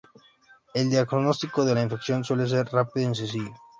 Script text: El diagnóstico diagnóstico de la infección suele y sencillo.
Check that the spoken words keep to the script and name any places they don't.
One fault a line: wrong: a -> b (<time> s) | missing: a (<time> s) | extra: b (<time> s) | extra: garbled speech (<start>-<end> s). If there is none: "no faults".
missing: diagnóstico (1.6 s)
extra: ser rápido (2.5 s)